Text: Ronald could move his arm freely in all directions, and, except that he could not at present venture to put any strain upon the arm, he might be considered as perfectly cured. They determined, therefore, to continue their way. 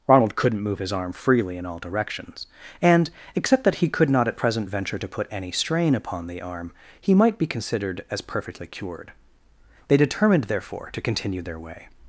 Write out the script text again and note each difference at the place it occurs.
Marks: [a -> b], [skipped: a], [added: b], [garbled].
Ronald [could -> couldn't] move his arm freely in all directions, and, except that he could not at present venture to put any strain upon the arm, he might be considered as perfectly cured. They determined, therefore, to continue their way.